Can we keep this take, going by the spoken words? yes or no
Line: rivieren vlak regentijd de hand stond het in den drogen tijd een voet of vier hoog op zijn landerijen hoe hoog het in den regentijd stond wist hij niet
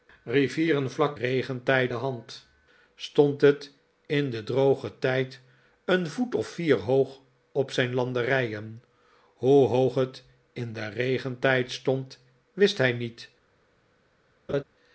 yes